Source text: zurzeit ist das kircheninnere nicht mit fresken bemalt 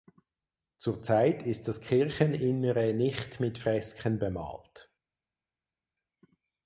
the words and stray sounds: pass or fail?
pass